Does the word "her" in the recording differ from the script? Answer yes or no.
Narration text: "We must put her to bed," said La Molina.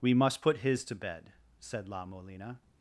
yes